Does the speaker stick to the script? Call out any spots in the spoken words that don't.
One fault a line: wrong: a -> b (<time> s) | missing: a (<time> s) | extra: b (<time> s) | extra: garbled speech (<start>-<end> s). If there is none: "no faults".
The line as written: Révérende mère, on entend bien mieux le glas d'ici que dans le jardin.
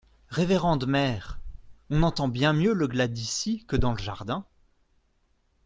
no faults